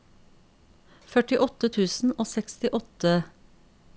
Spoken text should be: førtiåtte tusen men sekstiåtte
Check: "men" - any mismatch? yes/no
yes